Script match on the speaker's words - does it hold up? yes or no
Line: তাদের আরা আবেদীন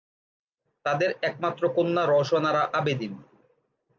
no